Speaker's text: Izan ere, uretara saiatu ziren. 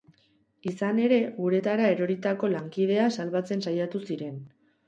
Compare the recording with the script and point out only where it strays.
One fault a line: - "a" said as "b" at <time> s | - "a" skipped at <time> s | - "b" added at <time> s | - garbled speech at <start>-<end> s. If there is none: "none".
- "eroritako lankidea salbatzen" added at 2.0 s